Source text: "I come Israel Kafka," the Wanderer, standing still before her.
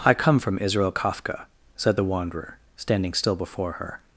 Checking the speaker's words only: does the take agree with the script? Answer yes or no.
no